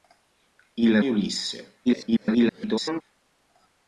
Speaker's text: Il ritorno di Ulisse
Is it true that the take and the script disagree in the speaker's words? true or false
true